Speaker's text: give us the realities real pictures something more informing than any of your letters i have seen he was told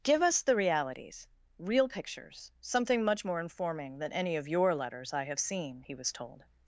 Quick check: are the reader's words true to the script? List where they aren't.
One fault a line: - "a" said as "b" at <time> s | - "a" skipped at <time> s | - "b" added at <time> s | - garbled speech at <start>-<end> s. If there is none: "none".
- "much" added at 3.0 s